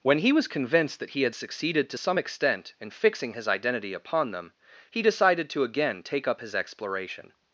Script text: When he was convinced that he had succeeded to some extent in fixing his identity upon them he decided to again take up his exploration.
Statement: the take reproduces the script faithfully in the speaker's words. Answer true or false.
true